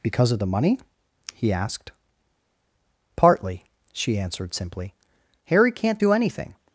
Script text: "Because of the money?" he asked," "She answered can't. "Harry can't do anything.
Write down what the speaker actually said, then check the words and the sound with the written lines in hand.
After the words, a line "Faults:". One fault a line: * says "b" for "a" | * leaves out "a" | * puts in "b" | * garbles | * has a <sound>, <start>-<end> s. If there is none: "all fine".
"Because of the money?" he asked. "Partly," she answered simply. "Harry can't do anything.
Faults:
* puts in "Partly"
* says "simply" for "can't"